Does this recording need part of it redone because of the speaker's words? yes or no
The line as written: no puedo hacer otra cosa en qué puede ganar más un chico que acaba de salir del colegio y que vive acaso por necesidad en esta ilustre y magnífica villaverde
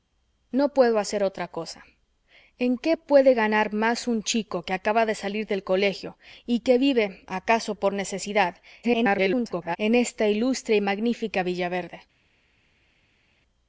yes